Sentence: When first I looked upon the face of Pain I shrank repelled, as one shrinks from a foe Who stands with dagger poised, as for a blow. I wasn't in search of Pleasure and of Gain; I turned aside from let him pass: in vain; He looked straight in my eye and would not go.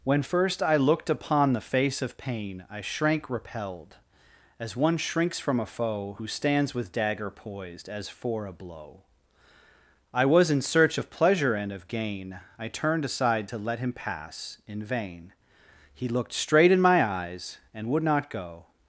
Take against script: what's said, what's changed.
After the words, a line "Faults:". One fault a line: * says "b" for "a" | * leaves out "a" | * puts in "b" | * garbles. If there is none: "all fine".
When first I looked upon the face of Pain I shrank repelled, as one shrinks from a foe Who stands with dagger poised, as for a blow. I was in search of Pleasure and of Gain; I turned aside to let him pass: in vain; He looked straight in my eyes and would not go.
Faults:
* says "was" for "wasn't"
* says "to" for "from"
* says "eyes" for "eye"